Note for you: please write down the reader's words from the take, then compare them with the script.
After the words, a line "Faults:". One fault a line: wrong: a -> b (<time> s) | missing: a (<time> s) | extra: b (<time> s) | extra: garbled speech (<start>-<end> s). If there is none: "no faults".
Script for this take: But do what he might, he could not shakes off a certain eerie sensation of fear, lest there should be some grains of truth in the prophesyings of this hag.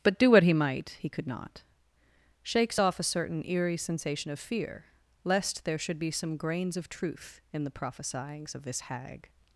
But do what he might, he could not shakes off a certain eerie sensation of fear, lest there should be some grains of truth in the prophesyings of this hag.
Faults:
no faults